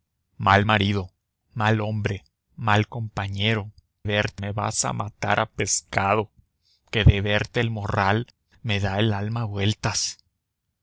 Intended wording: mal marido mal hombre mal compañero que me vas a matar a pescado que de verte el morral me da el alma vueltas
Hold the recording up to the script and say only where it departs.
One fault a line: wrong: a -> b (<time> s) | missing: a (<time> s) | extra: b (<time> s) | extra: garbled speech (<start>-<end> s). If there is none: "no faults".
wrong: que -> verte (4.0 s)